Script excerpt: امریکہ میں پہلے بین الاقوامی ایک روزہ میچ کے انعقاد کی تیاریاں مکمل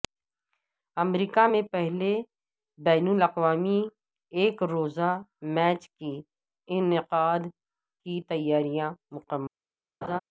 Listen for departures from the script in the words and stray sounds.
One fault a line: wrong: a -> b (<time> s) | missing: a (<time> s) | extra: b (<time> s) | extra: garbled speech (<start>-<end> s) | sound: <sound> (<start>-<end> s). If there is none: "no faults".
sound: laugh (10.0-10.2 s)